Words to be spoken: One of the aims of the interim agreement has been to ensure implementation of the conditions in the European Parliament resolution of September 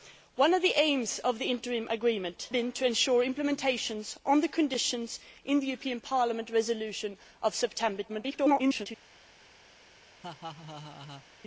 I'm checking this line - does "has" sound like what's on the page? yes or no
no